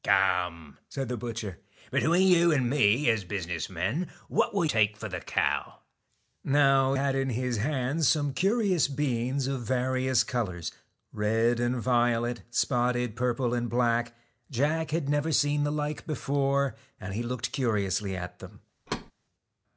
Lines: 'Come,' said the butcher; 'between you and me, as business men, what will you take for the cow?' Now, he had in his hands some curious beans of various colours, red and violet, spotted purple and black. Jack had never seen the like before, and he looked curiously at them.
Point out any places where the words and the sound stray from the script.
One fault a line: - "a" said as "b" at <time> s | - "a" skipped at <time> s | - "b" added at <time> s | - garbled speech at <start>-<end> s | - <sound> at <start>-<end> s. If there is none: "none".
- "you" skipped at 4.7 s
- "he" skipped at 6.9 s
- thud at 18.9-19.1 s